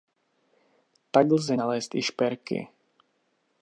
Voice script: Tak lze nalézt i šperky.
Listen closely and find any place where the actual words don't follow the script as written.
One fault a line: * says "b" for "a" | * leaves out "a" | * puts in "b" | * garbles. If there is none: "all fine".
all fine